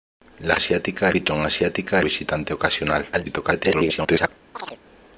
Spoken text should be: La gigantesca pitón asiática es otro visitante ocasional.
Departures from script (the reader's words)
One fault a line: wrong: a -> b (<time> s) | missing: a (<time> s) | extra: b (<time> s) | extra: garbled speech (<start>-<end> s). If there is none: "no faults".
wrong: gigantesca -> asiática (0.5 s)
missing: es otro (2.0 s)
extra: garbled speech (3.1-4.3 s)